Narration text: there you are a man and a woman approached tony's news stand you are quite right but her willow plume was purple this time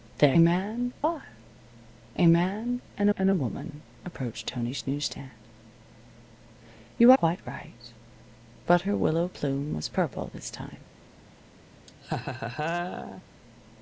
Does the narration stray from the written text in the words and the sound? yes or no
yes